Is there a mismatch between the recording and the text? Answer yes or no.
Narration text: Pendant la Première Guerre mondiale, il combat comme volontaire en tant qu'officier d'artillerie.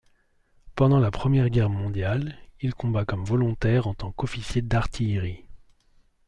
no